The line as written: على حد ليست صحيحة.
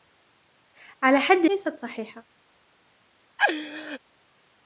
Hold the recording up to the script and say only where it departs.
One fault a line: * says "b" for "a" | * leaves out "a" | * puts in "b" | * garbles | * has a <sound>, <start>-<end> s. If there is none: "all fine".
* has a laugh, 3.4-4.0 s